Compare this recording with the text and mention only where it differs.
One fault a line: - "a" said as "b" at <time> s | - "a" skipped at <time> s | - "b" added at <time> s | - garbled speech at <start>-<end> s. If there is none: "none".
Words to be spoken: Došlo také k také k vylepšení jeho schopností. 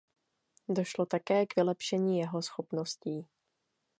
- "také k" skipped at 1.6 s